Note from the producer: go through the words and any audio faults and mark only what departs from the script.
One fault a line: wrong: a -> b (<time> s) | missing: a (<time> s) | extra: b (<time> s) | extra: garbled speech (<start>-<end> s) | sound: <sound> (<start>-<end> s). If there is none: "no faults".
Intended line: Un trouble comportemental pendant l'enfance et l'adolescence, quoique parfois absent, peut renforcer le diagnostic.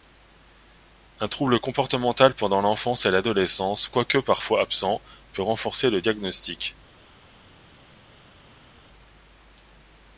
no faults